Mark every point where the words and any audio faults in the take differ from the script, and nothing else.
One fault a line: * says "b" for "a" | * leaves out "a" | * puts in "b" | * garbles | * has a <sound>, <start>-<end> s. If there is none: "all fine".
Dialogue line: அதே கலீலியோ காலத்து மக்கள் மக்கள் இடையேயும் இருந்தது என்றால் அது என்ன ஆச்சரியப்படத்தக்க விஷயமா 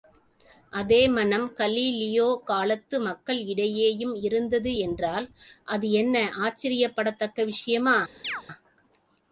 * puts in "மனம்"
* leaves out "மக்கள்"
* has a chirp, 8.2-8.4 s